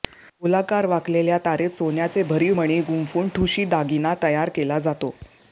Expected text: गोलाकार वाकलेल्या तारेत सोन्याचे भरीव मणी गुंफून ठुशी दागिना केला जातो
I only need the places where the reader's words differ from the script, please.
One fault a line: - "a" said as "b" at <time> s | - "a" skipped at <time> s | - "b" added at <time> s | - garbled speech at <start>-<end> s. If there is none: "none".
- "तयार" added at 4.2 s